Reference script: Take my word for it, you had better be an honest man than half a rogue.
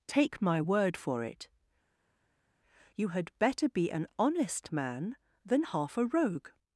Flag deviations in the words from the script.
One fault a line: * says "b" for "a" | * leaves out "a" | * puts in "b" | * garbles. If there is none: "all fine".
all fine